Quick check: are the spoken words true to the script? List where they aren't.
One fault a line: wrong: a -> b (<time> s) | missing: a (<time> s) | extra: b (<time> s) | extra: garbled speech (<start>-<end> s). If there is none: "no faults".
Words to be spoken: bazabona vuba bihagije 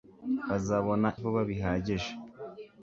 no faults